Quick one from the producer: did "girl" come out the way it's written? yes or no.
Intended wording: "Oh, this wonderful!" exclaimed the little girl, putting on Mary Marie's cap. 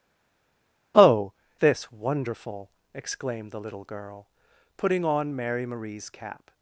yes